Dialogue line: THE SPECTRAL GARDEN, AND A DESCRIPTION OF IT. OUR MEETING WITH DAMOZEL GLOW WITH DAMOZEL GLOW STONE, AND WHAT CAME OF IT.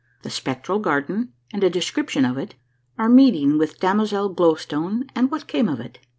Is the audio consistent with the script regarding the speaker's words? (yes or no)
no